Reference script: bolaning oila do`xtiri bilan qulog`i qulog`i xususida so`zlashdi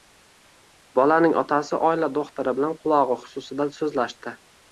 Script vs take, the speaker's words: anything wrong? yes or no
yes